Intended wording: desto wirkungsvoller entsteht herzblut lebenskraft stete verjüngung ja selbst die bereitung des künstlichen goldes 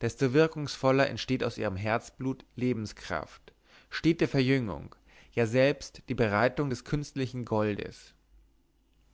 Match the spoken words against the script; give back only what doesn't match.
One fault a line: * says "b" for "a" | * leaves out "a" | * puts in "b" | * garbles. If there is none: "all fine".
* puts in "aus ihrem"